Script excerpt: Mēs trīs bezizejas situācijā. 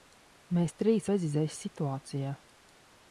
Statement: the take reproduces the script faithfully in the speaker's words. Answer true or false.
true